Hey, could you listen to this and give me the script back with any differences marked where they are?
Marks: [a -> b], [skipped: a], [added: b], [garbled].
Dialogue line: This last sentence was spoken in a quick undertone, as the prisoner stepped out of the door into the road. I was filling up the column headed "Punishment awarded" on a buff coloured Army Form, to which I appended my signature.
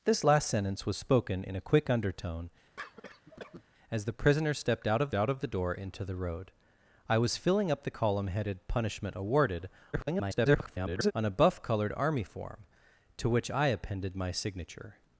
This last sentence was spoken in a quick undertone, as the prisoner stepped out of [added: out of] the door into the road. I was filling up the column headed "Punishment awarded" [garbled] on a buff coloured Army Form, to which I appended my signature.